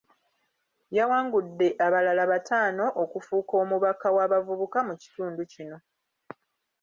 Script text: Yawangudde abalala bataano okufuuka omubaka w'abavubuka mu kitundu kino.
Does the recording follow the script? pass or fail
pass